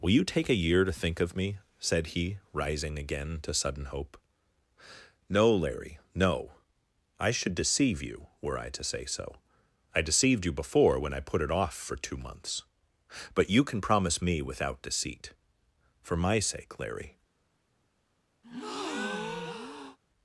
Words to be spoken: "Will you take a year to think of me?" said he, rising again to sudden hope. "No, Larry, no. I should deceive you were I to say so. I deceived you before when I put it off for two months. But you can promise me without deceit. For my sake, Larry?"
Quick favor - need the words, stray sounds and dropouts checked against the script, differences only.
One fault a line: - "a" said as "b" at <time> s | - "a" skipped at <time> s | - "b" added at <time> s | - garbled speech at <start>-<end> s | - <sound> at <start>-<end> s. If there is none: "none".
- breath at 18.4-20.0 s